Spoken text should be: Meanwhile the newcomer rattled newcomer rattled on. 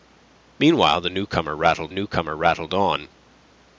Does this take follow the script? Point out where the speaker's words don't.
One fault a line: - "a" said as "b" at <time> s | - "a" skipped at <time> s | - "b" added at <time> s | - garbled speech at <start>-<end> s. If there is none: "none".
none